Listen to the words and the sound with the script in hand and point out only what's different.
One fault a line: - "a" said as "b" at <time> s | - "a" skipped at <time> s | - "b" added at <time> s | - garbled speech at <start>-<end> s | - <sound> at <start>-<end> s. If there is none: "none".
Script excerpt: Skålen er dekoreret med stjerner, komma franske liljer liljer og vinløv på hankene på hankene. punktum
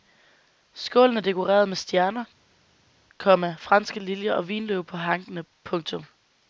- "liljer" skipped at 4.3 s
- "på hankene" skipped at 5.4 s